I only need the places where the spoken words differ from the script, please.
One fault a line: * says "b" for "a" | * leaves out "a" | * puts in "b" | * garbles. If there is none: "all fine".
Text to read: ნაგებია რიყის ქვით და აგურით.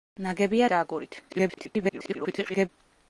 * leaves out "რიყის ქვით"
* garbles